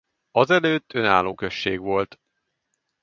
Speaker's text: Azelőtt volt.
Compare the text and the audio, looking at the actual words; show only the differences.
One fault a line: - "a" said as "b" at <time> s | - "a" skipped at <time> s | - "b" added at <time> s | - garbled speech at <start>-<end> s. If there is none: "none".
- "önálló község" added at 0.9 s